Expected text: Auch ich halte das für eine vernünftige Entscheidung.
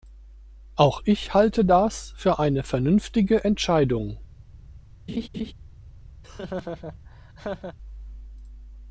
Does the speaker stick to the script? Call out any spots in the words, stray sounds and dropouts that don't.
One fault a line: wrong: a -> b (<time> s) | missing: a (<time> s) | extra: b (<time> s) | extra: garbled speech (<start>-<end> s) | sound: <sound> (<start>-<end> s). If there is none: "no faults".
sound: laugh (5.1-5.5 s)
sound: laugh (6.2-7.8 s)